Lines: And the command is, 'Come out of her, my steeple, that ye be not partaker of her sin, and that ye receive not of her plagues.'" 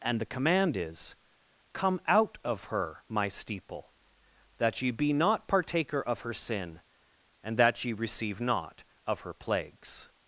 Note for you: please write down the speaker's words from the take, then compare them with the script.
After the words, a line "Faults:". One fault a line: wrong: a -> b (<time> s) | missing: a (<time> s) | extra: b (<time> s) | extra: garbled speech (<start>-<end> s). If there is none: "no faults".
And the command is, 'Come out of her, my steeple, that ye be not partaker of her sin, and that ye receive not of her plagues.'"
Faults:
no faults